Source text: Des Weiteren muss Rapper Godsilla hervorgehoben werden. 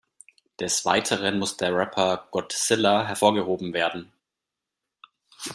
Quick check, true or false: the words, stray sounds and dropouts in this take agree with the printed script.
false